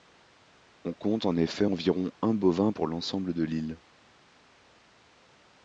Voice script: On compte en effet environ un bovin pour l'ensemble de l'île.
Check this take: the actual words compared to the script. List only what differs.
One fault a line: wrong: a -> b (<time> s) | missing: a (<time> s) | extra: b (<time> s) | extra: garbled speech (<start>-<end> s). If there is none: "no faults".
no faults